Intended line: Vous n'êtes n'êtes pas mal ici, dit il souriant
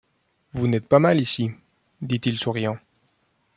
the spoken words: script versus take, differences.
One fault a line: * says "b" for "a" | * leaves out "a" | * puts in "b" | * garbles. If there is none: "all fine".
* leaves out "n'êtes"